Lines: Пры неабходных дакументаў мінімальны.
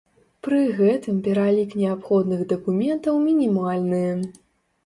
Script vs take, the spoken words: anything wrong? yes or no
yes